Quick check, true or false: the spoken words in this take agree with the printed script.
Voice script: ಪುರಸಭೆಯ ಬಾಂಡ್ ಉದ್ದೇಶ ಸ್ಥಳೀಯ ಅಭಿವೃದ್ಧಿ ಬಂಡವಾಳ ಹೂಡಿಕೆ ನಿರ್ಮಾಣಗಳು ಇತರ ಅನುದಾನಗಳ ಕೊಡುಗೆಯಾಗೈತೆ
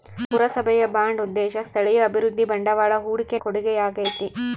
false